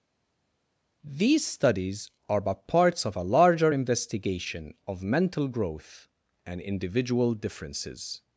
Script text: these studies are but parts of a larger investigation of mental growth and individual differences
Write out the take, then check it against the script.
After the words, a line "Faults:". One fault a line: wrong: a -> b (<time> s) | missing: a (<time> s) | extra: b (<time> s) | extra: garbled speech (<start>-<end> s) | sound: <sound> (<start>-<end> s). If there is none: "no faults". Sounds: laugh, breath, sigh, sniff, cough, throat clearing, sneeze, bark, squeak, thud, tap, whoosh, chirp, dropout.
these studies are but parts of a larger investigation of mental growth and individual differences
Faults:
no faults